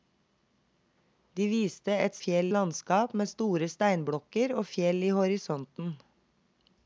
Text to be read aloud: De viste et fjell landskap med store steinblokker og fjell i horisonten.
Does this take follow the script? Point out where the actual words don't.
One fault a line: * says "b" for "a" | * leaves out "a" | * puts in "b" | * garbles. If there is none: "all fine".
all fine